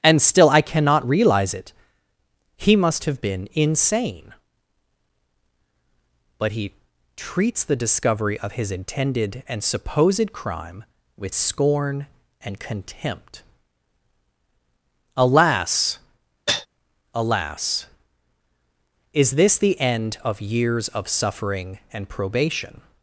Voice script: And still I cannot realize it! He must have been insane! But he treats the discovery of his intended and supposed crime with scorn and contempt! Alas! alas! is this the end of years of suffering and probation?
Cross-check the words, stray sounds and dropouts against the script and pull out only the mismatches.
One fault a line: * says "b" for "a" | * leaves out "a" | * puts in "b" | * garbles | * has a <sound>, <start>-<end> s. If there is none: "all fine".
* has a cough, 16.5-16.7 s